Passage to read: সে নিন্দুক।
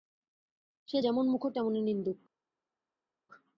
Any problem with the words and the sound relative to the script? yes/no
yes